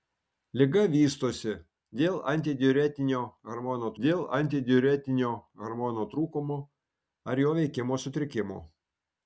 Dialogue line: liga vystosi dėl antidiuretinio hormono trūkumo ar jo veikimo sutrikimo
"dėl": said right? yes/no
yes